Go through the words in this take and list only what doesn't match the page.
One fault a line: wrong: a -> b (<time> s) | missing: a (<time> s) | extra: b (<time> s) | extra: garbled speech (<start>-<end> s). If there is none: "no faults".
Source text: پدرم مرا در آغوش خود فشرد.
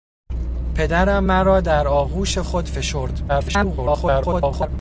extra: garbled speech (3.3-4.7 s)